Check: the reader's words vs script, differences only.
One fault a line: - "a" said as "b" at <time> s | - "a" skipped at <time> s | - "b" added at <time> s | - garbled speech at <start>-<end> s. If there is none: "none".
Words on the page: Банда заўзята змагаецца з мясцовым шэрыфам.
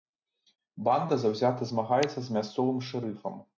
none